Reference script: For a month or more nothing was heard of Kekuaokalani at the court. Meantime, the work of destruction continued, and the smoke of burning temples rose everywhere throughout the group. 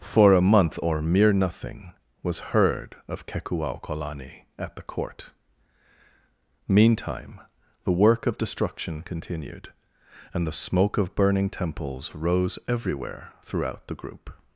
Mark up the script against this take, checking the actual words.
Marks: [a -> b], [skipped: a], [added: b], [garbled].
For a month or [more -> mere] nothing was heard of Kekuaokalani at the court. Meantime, the work of destruction continued, and the smoke of burning temples rose everywhere throughout the group.